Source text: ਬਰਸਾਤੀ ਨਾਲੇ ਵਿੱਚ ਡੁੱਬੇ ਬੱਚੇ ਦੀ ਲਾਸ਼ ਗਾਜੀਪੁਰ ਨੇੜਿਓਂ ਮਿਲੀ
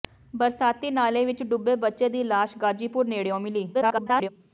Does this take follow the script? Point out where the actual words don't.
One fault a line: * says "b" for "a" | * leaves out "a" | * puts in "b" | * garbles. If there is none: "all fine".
* garbles